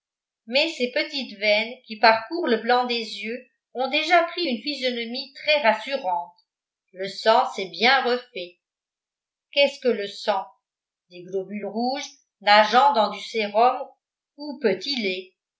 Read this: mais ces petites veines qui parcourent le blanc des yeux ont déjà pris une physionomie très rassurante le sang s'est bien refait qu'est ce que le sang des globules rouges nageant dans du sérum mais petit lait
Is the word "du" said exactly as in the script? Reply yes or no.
yes